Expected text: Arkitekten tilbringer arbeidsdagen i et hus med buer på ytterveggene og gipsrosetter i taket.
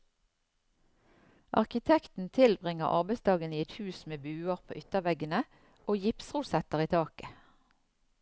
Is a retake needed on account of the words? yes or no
no